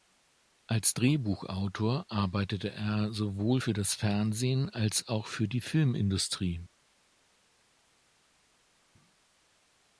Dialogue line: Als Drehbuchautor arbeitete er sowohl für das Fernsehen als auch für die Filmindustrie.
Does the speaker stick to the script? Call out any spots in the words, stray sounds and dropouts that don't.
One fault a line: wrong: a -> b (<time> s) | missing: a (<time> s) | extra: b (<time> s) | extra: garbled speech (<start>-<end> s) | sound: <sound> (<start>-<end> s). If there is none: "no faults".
no faults